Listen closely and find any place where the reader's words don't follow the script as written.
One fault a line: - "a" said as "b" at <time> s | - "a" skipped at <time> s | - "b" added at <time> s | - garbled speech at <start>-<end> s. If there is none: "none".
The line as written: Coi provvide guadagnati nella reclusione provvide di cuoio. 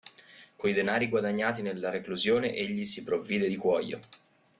- "provvide" said as "denari" at 0.7 s
- "egli si" added at 2.5 s